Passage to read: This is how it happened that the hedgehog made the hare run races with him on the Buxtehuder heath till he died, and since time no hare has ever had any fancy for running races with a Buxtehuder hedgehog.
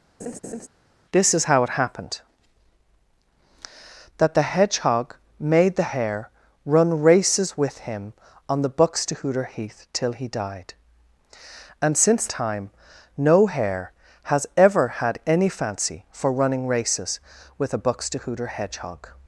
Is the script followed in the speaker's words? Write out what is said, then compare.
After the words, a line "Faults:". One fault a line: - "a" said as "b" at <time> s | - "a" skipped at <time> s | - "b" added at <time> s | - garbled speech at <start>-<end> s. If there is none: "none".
This is how it happened that the hedgehog made the hare run races with him on the Buxtehuder heath till he died, and since time no hare has ever had any fancy for running races with a Buxtehuder hedgehog.
Faults:
none